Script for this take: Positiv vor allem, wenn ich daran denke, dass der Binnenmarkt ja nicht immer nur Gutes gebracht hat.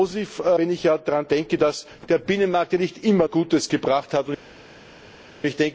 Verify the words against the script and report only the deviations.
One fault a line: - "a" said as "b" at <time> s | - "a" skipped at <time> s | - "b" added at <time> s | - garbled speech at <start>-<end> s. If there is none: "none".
- "vor allem" skipped at 0.4 s
- "nur" skipped at 3.3 s